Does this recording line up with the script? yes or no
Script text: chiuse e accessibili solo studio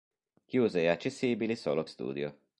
yes